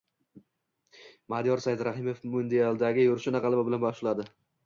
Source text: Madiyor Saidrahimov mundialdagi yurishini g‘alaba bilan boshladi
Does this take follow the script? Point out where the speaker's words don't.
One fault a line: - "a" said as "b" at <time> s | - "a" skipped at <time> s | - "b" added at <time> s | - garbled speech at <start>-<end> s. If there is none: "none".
none